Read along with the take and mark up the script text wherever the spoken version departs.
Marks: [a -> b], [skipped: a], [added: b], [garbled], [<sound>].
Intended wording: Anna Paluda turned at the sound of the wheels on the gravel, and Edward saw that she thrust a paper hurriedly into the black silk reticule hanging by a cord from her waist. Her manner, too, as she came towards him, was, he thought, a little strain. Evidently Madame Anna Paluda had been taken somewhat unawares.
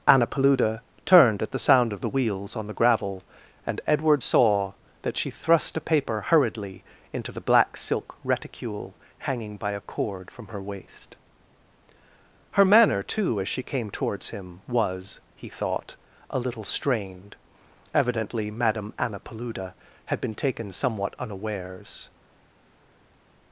Anna Paluda turned at the sound of the wheels on the gravel, and Edward saw that she thrust a paper hurriedly into the black silk reticule hanging by a cord from her waist. Her manner, too, as she came towards him, was, he thought, a little [strain. -> strained] Evidently Madame Anna Paluda had been taken somewhat unawares.